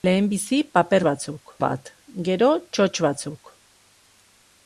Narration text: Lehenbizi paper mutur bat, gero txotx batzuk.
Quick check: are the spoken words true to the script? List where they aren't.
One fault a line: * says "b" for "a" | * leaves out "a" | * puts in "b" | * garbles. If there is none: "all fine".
* says "batzuk" for "mutur"